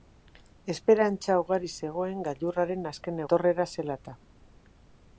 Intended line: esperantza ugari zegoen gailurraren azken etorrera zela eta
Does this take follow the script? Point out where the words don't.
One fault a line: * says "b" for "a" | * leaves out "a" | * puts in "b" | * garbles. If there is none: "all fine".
all fine